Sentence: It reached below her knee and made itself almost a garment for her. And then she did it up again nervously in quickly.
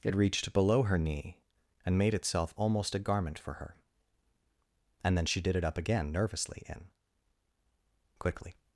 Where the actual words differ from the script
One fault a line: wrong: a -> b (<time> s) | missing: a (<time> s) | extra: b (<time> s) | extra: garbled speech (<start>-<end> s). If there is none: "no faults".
no faults